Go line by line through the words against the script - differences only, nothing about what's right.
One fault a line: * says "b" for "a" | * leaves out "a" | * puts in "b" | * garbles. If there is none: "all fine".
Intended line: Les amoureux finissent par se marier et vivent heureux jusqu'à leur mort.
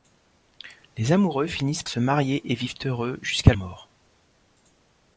* leaves out "par"
* leaves out "leur"